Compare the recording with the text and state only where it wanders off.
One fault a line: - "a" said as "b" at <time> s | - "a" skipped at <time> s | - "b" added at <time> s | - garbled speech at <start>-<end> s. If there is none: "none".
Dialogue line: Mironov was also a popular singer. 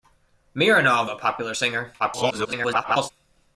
- "was also" skipped at 1.1 s
- garbled speech at 2.0-3.1 s